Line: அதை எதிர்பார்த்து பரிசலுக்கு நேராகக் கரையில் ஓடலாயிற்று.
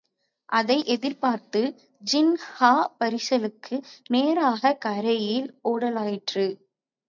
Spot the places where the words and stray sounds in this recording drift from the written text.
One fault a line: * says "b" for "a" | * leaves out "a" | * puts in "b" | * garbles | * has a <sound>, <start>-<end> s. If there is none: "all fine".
* puts in "ஜின்கா"